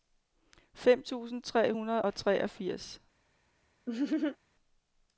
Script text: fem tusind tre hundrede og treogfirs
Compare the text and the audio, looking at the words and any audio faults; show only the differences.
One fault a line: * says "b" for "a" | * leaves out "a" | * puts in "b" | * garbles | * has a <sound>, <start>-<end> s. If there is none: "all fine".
* has a laugh, 3.9-4.4 s